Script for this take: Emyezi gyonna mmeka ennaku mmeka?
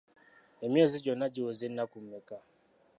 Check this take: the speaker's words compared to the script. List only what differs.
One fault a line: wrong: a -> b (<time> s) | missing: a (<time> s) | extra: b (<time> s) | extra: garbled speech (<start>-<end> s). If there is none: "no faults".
wrong: mmeka -> giweza (1.3 s)